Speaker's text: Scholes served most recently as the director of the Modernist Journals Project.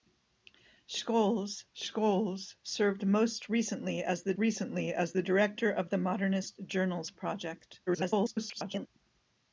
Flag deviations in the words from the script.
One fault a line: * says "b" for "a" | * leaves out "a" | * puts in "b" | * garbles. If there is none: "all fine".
* puts in "scholes"
* puts in "recently as the"
* garbles